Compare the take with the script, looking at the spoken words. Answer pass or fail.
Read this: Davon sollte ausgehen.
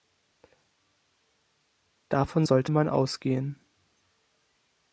fail